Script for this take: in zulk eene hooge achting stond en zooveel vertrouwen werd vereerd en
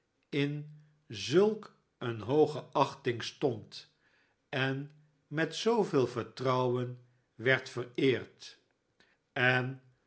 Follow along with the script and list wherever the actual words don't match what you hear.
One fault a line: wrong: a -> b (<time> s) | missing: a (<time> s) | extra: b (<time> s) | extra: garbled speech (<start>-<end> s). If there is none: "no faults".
extra: met (5.3 s)